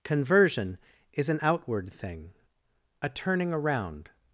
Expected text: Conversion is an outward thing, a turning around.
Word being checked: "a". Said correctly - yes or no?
yes